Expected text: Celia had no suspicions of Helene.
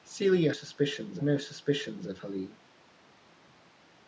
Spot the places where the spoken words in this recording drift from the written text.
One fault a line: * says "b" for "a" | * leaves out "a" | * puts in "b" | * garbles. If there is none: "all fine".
* says "suspicions" for "had"